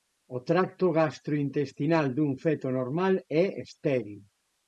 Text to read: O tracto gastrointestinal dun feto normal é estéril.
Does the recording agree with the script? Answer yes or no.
yes